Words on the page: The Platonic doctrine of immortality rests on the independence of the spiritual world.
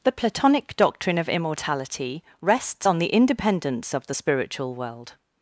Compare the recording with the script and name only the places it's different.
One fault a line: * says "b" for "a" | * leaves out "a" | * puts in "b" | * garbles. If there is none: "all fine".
all fine